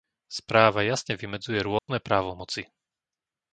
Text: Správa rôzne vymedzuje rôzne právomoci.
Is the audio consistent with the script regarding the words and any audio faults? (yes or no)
no